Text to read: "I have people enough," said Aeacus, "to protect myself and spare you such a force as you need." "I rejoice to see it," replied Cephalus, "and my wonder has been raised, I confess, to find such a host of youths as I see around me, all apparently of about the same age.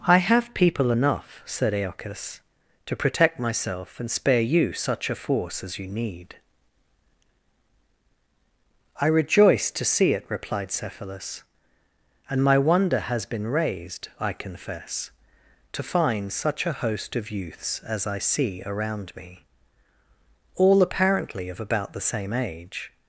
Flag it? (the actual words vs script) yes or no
no